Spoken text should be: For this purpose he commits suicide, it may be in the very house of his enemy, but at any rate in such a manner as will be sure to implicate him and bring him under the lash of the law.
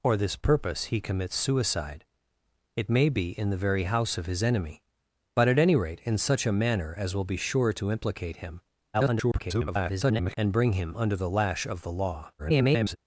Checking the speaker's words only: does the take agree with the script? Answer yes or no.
no